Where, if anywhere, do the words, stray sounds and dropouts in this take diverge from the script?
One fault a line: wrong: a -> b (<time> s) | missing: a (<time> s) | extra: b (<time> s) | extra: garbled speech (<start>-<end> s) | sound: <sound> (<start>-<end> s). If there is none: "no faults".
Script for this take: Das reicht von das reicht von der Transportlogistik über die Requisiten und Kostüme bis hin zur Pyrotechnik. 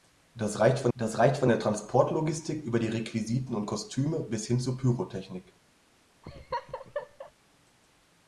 sound: laugh (6.2-7.3 s)